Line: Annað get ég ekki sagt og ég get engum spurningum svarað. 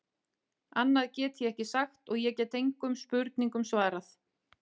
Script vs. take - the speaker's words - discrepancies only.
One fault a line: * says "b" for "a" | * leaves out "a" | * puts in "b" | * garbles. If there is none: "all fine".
all fine